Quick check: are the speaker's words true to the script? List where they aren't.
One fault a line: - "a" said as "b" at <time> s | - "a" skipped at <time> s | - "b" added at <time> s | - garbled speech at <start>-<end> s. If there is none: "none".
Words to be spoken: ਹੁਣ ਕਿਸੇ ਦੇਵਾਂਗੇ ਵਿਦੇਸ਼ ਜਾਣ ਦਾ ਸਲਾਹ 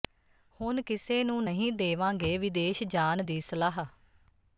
- "ਨੂੰ ਨਹੀਂ" added at 1.2 s
- "ਦਾ" said as "ਦੀ" at 3.2 s